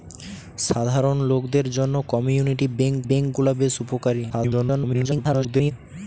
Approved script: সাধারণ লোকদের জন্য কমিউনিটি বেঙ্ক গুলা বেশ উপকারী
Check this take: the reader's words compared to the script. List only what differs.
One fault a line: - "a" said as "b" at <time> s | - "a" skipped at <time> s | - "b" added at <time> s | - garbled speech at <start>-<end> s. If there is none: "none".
- "বেঙ্ক" added at 3.1 s
- garbled speech at 4.3-5.7 s